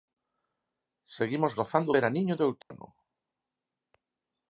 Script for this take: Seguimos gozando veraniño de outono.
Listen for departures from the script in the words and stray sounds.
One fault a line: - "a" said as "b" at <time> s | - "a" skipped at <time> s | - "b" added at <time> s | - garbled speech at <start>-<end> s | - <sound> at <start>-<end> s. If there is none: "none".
- dropout at 2.6-2.7 s